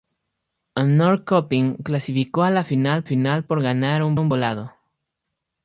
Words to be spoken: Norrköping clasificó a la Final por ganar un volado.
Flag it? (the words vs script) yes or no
yes